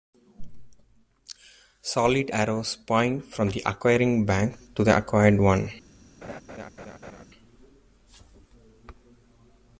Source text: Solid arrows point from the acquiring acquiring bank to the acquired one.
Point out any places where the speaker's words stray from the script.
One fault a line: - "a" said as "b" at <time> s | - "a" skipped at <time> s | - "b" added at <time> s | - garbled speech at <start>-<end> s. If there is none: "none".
- "acquiring" skipped at 4.3 s